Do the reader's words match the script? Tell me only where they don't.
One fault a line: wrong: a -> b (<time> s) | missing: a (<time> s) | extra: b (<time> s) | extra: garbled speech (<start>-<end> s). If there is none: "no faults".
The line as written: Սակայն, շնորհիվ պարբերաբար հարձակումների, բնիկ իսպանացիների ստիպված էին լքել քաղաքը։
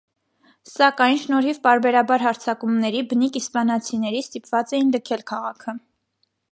no faults